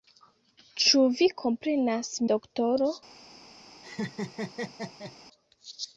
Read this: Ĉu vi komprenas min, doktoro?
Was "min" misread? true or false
true